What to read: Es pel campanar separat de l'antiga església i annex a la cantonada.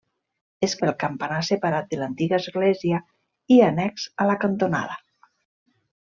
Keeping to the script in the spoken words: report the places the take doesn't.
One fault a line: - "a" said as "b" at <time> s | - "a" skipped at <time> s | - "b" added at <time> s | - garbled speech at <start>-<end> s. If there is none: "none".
none